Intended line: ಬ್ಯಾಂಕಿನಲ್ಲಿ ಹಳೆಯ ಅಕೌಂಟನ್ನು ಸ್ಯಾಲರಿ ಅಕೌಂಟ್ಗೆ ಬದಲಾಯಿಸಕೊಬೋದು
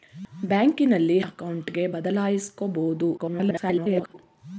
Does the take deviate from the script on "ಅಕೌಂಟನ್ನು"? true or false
true